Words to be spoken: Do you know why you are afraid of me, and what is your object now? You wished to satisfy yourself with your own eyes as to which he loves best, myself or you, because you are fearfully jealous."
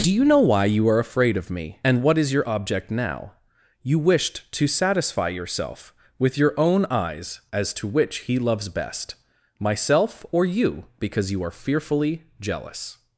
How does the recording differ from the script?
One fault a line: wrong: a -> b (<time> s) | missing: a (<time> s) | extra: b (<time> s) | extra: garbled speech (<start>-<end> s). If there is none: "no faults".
no faults